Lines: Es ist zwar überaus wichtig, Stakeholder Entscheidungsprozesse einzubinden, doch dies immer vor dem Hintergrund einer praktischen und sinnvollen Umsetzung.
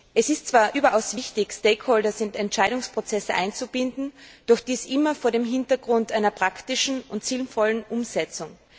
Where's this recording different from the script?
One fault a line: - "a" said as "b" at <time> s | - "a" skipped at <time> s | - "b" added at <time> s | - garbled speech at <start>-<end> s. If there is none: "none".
- "in" added at 2.2 s